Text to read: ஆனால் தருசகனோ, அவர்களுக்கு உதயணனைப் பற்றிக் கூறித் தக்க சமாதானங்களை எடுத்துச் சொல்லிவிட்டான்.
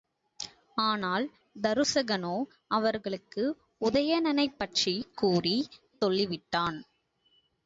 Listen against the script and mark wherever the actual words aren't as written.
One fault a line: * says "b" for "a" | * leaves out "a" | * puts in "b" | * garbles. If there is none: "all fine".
* leaves out "தக்க சமாதானங்களை எடுத்துச்"